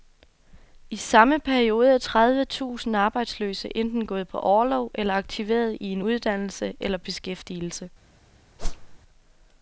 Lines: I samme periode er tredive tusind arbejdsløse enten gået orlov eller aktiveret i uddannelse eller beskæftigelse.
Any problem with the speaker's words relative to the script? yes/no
yes